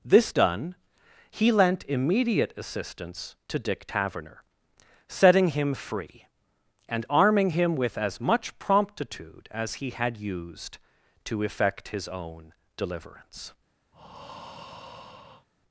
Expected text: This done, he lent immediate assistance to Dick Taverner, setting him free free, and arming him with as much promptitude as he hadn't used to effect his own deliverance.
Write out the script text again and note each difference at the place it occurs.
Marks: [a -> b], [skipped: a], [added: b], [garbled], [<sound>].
This done, he lent immediate assistance to Dick Taverner, setting him free [skipped: free,] and arming him with as much promptitude as he [hadn't -> had] used to effect his own deliverance. [breath]